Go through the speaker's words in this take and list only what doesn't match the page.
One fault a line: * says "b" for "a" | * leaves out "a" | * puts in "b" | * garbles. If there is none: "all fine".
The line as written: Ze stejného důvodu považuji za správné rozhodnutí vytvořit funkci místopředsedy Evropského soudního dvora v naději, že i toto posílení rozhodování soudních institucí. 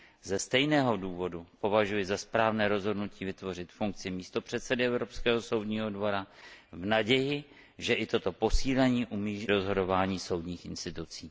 all fine